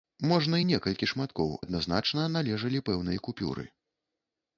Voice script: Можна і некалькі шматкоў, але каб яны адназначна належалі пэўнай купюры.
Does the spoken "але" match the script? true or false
false